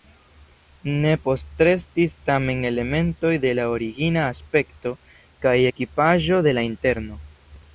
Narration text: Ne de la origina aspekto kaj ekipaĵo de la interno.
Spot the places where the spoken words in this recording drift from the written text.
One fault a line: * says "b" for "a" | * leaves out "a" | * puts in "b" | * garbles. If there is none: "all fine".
* puts in "postrestis tamen elementoj"